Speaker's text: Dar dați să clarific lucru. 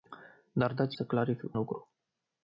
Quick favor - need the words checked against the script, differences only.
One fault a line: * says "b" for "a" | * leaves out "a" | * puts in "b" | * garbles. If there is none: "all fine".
all fine